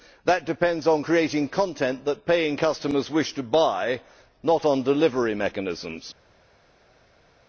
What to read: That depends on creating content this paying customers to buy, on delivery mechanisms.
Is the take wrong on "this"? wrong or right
wrong